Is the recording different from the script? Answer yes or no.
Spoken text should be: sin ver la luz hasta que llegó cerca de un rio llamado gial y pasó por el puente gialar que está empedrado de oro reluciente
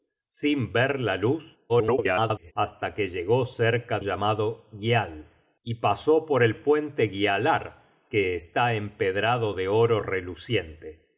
yes